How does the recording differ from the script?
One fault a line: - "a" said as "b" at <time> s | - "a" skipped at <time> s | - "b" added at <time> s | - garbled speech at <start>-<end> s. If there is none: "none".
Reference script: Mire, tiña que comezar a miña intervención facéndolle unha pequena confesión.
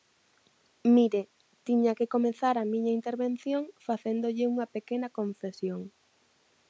none